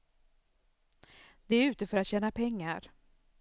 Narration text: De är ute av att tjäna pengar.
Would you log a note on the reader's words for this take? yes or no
yes